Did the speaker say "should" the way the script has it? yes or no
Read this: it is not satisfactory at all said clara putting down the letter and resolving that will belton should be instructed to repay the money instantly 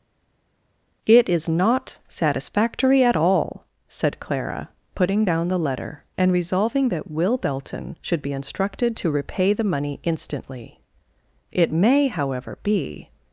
yes